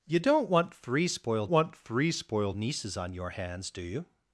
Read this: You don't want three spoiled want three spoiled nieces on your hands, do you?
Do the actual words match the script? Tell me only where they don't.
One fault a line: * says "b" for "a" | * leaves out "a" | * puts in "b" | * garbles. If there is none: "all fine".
all fine